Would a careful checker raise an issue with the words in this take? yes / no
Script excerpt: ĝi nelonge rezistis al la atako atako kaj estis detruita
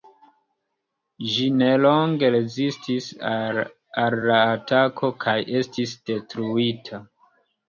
yes